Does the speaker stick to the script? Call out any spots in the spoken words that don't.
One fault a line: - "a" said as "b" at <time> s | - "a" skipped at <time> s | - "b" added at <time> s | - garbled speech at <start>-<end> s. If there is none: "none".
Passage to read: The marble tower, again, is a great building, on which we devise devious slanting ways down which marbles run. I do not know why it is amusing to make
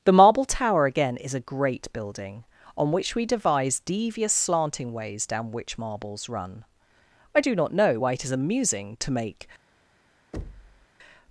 none